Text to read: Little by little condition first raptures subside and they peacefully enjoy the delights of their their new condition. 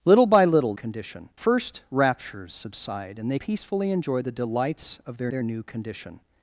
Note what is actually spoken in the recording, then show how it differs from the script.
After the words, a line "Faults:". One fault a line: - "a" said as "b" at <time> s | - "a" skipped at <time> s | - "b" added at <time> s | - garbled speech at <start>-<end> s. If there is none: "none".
Little by little condition first raptures subside and they peacefully enjoy the delights of their their new condition.
Faults:
none